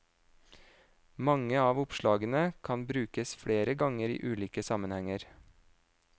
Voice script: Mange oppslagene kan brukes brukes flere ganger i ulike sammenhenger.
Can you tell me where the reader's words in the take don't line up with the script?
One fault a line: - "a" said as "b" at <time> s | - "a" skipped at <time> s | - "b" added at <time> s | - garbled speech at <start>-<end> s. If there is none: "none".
- "av" added at 1.6 s
- "brukes" skipped at 3.4 s